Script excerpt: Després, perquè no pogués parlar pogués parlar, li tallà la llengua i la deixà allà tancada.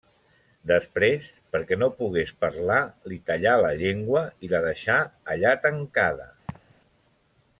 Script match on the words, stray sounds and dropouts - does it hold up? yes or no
no